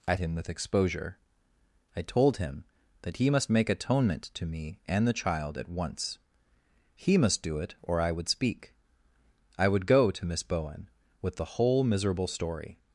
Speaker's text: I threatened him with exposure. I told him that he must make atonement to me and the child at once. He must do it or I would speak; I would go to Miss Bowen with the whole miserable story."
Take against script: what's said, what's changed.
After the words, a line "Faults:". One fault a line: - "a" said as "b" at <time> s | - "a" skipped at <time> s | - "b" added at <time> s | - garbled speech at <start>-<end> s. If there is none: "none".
I him with exposure. I told him that he must make atonement to me and the child at once. He must do it or I would speak; I would go to Miss Bowen with the whole miserable story."
Faults:
- "threatened" skipped at 0.1 s